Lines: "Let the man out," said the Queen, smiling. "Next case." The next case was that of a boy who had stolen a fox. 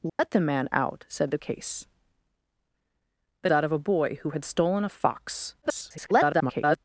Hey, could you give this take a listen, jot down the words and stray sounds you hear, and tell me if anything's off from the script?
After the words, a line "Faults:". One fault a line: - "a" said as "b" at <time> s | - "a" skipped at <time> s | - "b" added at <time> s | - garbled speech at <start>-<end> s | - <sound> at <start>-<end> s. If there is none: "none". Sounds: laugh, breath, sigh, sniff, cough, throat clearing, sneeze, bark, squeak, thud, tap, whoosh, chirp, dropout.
"Let the man out," said the Case." The that of a boy who had stolen a fox. [garbled]
Faults:
- dropout at 0.1-0.2 s
- "Queen smiling Next" skipped at 1.4 s
- "next case was" skipped at 3.5 s
- garbled speech at 5.6-6.8 s